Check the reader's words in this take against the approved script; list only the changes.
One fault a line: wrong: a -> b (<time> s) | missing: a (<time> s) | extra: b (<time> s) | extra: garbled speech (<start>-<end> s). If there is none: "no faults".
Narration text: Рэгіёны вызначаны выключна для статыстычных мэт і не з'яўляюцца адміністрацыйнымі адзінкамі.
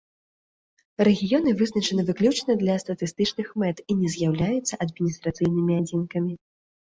no faults